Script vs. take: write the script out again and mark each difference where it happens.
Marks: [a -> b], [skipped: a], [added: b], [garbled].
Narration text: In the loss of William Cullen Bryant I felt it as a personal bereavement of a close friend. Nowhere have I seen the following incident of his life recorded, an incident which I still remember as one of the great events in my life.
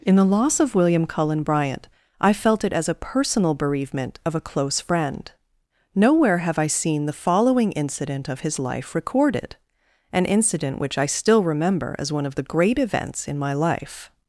In the loss of William Cullen Bryant I felt it as a personal bereavement of a close friend. Nowhere have I seen the following incident of his life recorded, an incident which I still remember as one of the great events in my life.